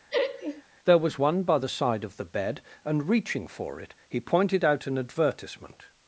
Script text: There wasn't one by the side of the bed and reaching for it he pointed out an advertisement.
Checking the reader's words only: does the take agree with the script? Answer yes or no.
no